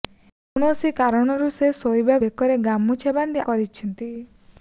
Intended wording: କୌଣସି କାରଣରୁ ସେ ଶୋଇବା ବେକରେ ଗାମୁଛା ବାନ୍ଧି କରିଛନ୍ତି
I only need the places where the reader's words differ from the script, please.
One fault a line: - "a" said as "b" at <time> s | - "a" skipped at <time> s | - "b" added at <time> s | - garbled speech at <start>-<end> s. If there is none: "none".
none